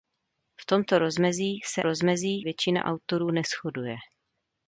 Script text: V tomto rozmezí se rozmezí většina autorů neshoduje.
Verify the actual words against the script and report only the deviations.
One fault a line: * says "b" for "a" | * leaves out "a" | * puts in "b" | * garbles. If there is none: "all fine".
all fine